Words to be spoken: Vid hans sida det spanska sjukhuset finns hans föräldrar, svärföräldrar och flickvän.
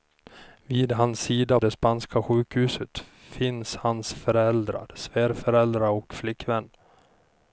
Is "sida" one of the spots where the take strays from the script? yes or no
no